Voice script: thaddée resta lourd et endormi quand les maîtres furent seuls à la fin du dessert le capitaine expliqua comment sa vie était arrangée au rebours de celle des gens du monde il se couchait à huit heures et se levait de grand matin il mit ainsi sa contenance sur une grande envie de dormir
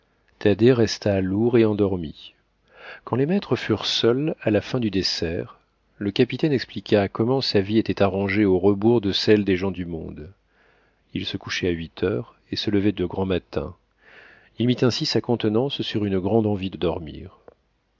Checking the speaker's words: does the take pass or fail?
pass